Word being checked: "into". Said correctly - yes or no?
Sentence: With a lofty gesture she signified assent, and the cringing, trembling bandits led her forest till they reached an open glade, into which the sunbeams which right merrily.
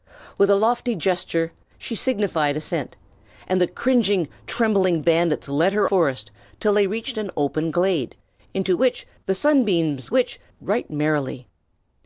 yes